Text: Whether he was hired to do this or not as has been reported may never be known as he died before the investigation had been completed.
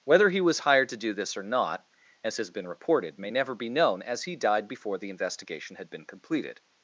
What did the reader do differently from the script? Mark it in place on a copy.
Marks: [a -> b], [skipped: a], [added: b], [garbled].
Whether he was hired to do this or not as has been reported may never be known as he died before the investigation had been completed.